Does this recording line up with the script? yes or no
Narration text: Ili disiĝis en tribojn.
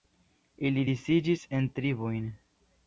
yes